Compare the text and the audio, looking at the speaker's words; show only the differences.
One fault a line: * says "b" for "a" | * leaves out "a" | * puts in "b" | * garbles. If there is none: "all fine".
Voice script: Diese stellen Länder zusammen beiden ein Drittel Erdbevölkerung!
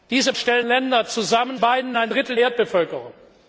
all fine